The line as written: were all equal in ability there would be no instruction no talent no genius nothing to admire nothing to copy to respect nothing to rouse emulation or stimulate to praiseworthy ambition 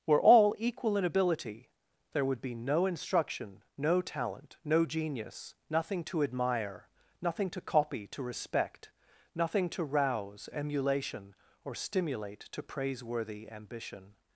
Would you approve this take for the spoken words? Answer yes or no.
yes